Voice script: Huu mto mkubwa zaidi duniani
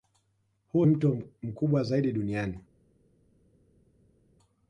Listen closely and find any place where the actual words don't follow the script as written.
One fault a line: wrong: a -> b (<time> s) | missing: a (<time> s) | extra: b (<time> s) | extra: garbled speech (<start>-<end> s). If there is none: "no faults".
no faults